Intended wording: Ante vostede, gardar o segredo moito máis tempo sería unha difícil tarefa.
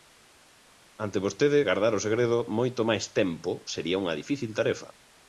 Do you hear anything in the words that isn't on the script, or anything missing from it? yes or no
no